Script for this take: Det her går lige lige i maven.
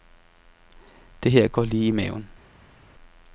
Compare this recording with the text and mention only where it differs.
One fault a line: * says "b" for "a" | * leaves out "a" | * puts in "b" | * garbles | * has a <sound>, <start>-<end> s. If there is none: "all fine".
* leaves out "lige"